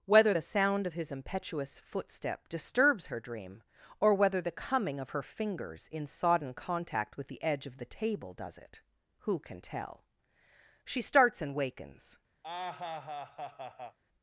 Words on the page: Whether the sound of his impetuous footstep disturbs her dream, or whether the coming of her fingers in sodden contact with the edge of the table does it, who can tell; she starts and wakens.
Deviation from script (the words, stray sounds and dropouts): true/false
true